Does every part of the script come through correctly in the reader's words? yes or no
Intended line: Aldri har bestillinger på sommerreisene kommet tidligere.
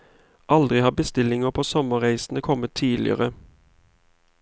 yes